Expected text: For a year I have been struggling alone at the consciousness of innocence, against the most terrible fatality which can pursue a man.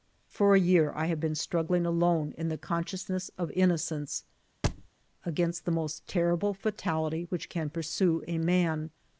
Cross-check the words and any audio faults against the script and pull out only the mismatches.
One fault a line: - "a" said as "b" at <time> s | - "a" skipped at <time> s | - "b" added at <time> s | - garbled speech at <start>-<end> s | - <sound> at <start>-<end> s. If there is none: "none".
- "at" said as "in" at 2.4 s
- thud at 4.6-4.9 s